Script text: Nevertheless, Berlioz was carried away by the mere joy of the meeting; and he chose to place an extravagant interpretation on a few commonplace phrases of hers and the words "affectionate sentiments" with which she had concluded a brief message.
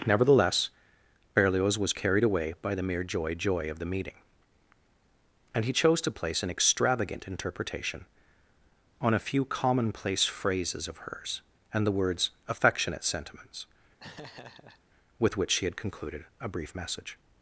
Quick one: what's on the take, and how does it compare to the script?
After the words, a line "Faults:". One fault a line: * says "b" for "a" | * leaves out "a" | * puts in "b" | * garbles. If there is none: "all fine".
Nevertheless, Berlioz was carried away by the mere joy joy of the meeting; and he chose to place an extravagant interpretation on a few commonplace phrases of hers and the words "affectionate sentiments" with which she had concluded a brief message.
Faults:
* puts in "joy"